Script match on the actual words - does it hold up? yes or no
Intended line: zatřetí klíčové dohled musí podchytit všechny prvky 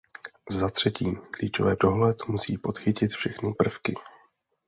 yes